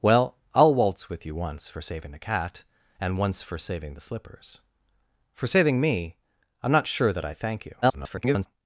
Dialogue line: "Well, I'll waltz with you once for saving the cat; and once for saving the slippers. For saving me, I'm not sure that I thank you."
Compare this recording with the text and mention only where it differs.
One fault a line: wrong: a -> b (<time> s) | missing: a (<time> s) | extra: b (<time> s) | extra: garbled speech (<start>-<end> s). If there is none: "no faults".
extra: garbled speech (7.8-8.5 s)